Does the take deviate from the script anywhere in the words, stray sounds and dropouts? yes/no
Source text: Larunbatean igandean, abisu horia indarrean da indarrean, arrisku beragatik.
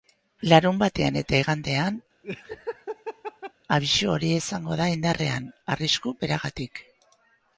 yes